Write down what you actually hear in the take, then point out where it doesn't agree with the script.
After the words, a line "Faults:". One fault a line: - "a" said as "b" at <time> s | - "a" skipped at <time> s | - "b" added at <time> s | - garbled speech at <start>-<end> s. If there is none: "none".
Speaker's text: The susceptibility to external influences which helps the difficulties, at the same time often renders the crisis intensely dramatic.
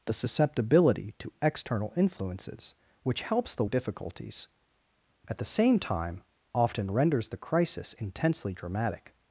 The susceptibility to external influences which helps the difficulties, at the same time often renders the crisis intensely dramatic.
Faults:
none